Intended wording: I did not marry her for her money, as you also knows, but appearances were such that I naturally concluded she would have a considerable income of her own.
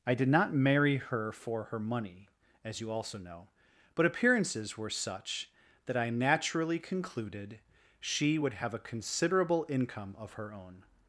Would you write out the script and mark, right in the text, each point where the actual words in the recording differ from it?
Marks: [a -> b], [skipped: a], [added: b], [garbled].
I did not marry her for her money, as you also [knows, -> know] but appearances were such that I naturally concluded she would have a considerable income of her own.